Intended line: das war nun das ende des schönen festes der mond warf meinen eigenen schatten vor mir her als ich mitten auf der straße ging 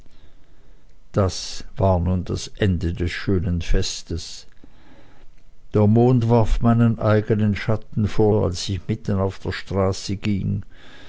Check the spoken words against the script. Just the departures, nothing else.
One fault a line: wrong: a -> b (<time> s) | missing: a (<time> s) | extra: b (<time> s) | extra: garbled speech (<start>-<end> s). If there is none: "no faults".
missing: mir her (8.3 s)